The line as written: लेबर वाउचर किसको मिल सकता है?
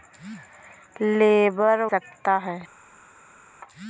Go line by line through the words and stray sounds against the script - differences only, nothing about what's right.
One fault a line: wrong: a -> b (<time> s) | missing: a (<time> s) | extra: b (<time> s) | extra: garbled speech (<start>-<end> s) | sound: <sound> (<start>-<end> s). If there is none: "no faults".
missing: वाउचर किसको मिल (1.8 s)